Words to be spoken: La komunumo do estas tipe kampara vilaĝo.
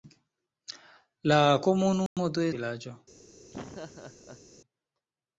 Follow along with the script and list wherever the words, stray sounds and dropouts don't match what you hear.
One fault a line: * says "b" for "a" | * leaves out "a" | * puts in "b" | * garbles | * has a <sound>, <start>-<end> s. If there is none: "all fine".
* has a dropout, 2.1-2.2 s
* leaves out "estas tipe kampara"
* has a laugh, 3.5-4.4 s